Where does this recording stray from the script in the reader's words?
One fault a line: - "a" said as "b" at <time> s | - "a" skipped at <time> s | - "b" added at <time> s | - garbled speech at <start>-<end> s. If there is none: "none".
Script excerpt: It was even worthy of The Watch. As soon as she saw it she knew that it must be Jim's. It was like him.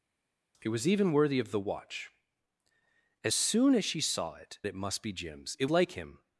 - "she knew that" skipped at 4.6 s
- "was" skipped at 5.7 s